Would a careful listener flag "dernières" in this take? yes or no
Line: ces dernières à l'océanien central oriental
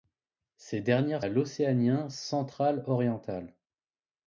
no